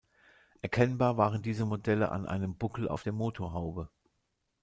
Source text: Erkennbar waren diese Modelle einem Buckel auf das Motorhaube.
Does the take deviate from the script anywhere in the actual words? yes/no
yes